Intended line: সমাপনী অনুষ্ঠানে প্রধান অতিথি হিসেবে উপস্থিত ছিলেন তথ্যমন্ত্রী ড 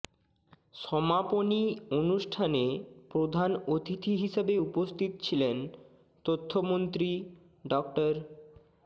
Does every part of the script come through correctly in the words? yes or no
yes